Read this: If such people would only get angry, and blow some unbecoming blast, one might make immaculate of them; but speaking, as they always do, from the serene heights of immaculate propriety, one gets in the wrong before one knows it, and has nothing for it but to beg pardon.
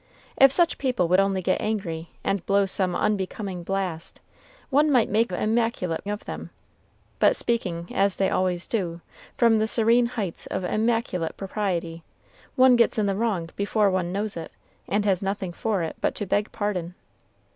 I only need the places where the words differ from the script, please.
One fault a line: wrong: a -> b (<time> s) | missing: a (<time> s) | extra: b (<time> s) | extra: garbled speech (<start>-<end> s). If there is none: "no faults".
no faults